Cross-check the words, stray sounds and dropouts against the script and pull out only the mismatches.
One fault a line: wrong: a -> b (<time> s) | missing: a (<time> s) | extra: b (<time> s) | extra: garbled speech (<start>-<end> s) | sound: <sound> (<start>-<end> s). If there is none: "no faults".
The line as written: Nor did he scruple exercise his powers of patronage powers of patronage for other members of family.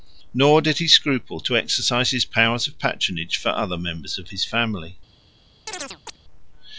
extra: to (1.4 s)
missing: powers of patronage (3.4 s)
extra: his (4.3 s)
sound: chirp (5.7-6.2 s)